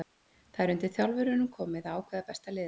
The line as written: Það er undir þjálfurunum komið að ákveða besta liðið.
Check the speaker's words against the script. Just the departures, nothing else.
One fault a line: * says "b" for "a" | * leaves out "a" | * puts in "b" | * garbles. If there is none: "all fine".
all fine